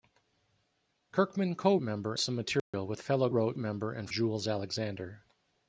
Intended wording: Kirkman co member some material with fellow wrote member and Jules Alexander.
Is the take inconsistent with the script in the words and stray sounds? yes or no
yes